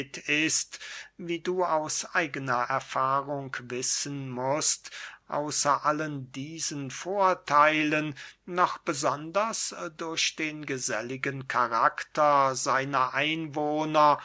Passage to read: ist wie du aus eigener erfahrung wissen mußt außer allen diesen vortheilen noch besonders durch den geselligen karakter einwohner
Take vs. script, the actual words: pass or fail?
fail